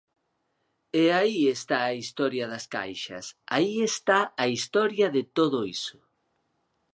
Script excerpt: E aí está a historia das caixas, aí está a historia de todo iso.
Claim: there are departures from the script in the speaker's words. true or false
false